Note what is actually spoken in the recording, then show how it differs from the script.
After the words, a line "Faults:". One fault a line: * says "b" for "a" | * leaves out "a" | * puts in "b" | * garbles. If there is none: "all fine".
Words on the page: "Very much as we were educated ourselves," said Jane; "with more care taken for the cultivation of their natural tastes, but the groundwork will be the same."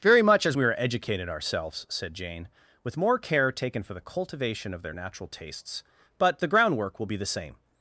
"Very much as we are educated ourselves," said Jane; "with more care taken for the cultivation of their natural tastes, but the groundwork will be the same."
Faults:
* says "are" for "were"